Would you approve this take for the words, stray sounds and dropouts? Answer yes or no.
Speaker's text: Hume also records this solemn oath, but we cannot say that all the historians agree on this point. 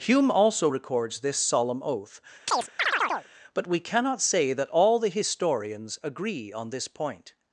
no